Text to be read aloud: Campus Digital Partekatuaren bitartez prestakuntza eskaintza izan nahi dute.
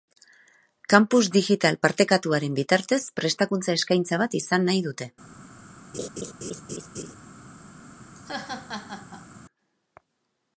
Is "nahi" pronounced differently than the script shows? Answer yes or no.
no